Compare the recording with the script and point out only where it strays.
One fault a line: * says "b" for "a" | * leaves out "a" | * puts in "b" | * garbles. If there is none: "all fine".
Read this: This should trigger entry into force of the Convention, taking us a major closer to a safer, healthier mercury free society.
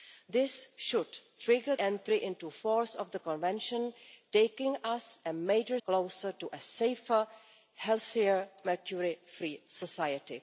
all fine